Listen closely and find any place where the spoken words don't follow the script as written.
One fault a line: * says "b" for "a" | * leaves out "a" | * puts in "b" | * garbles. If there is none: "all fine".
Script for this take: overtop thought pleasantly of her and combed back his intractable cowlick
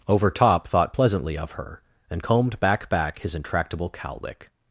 * puts in "back"